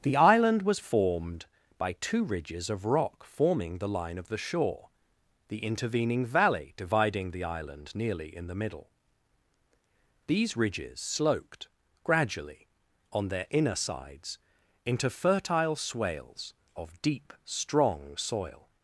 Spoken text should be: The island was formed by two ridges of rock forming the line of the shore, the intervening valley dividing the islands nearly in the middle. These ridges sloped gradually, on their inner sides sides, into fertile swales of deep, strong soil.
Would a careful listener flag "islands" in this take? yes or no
yes